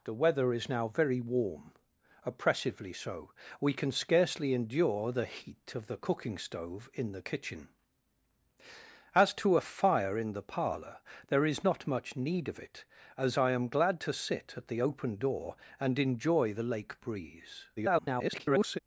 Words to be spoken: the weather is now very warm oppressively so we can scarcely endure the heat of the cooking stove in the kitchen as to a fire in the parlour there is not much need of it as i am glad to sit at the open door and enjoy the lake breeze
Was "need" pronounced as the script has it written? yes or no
yes